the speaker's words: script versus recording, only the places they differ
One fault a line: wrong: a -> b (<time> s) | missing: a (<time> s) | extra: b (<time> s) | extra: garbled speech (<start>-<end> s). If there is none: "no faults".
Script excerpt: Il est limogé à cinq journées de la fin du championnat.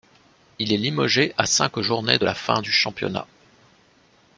no faults